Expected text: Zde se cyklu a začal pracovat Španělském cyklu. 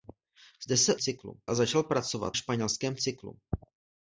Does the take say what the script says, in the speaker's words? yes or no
yes